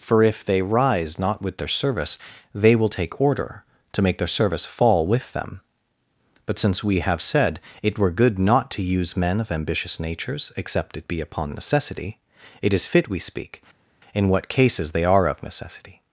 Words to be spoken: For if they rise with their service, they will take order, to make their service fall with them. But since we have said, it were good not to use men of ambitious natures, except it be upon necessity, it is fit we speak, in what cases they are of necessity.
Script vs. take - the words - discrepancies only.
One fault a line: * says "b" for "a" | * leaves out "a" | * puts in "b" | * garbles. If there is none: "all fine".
* puts in "not"